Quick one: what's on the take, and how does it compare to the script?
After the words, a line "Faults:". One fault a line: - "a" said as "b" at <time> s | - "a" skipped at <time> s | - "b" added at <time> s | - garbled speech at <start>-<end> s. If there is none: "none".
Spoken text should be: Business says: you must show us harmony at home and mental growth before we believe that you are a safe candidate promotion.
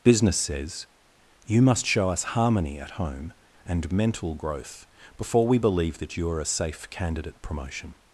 Business says: you must show us harmony at home and mental growth before we believe that you are a safe candidate promotion.
Faults:
none